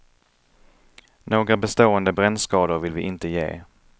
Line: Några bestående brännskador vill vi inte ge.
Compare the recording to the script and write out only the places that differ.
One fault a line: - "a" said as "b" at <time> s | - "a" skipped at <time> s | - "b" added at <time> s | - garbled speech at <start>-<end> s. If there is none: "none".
none